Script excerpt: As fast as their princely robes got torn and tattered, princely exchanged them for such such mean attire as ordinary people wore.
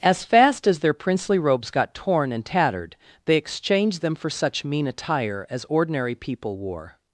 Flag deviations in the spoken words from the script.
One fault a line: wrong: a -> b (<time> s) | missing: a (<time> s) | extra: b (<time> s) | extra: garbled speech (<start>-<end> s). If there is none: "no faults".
wrong: princely -> they (3.2 s)
missing: such (4.7 s)